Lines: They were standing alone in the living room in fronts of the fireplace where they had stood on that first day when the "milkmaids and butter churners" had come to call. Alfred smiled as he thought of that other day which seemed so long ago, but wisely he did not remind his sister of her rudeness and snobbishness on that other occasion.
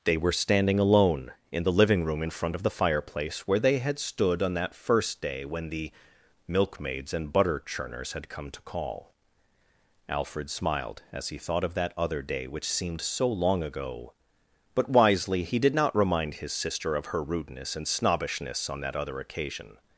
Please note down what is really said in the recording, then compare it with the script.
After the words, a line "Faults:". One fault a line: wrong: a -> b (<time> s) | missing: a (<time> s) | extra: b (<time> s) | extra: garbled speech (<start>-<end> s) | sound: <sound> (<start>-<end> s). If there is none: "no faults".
They were standing alone in the living room in front of the fireplace where they had stood on that first day when the "milkmaids and butter churners" had come to call. Alfred smiled as he thought of that other day which seemed so long ago, but wisely he did not remind his sister of her rudeness and snobbishness on that other occasion.
Faults:
wrong: fronts -> front (2.3 s)